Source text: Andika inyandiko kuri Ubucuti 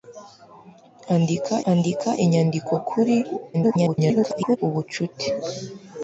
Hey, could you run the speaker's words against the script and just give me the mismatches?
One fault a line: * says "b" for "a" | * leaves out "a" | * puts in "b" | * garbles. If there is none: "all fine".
* puts in "andika"
* garbles